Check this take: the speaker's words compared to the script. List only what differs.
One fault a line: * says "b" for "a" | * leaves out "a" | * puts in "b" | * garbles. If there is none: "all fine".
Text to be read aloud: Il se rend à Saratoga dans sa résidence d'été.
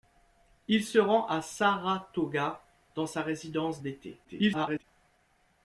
* garbles